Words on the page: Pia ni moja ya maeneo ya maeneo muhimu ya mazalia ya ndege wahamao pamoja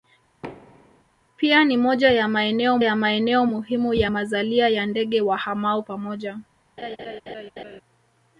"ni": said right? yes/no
yes